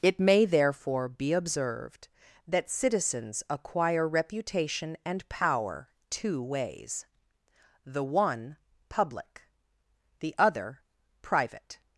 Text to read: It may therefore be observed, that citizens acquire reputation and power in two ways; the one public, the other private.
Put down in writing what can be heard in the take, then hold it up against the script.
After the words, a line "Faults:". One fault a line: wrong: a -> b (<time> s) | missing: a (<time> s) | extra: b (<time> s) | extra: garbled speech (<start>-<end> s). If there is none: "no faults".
It may therefore be observed, that citizens acquire reputation and power two ways; the one public, the other private.
Faults:
missing: in (5.9 s)